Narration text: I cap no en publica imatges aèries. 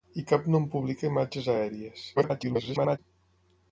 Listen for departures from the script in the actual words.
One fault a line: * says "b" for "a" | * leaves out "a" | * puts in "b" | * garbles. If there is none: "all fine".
* garbles